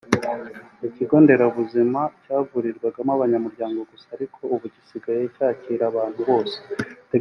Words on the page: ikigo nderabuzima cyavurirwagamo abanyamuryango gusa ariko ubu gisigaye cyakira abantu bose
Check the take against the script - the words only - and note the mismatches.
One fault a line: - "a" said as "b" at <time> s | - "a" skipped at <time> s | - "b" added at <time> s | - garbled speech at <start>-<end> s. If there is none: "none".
none